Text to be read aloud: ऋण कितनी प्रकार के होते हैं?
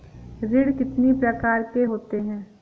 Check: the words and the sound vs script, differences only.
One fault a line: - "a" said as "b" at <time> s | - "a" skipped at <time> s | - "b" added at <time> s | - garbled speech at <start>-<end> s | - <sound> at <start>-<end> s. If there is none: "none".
none